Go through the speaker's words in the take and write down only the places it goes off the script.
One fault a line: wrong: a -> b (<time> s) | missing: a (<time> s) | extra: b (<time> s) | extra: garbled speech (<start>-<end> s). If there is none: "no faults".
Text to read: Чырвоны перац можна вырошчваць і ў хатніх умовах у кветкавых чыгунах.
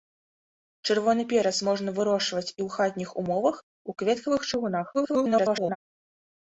extra: garbled speech (4.9-5.8 s)